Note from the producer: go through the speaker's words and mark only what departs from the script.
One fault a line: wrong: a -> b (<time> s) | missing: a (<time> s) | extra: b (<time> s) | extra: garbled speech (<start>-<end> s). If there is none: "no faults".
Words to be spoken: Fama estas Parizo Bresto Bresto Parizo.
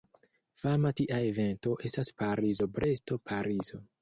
extra: tia evento (1.0 s)
missing: Bresto (3.2 s)